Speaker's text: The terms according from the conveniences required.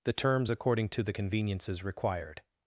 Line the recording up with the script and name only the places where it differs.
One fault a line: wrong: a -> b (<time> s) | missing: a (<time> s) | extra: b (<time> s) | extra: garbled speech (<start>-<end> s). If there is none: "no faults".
wrong: from -> to (0.9 s)